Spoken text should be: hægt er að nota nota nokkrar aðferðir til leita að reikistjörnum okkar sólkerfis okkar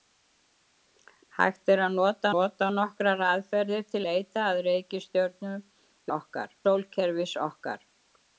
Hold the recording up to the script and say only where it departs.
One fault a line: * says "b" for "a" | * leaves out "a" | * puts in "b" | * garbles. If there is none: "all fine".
all fine